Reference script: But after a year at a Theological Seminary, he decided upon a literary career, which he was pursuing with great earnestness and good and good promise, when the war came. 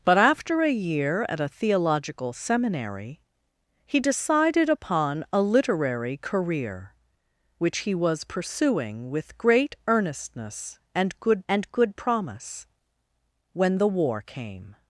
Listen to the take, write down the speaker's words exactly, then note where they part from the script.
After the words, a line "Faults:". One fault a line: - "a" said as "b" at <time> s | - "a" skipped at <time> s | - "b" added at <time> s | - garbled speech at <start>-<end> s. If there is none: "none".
But after a year at a Theological Seminary, he decided upon a literary career, which he was pursuing with great earnestness and good and good promise, when the war came.
Faults:
none